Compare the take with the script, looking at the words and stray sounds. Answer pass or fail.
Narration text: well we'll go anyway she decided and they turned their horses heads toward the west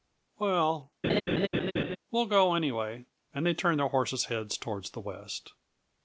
fail